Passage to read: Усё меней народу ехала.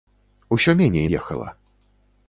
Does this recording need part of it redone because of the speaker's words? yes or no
yes